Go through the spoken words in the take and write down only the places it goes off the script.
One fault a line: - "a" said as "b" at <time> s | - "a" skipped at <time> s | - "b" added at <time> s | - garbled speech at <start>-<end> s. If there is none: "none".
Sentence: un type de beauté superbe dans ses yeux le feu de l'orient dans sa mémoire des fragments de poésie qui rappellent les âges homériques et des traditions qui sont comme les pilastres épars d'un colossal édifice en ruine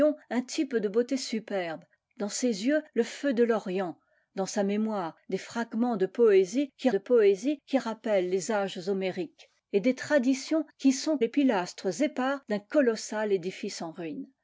- "de poésie qui" added at 6.9 s
- "comme" skipped at 11.2 s